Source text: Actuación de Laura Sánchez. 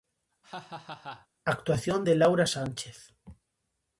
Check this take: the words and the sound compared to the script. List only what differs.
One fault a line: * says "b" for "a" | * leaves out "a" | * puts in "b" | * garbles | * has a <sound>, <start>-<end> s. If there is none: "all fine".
* has a laugh, 0.4-1.3 s